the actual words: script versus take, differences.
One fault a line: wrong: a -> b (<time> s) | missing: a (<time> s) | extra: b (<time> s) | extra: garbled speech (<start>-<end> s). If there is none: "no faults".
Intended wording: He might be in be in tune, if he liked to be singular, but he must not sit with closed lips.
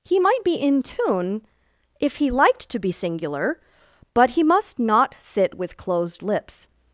missing: be in (0.8 s)